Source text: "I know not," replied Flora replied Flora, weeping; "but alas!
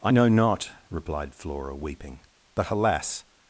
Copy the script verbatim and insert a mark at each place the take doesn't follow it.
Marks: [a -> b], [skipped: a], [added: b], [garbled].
"I know not," replied Flora [skipped: replied Flora,] weeping; "but alas!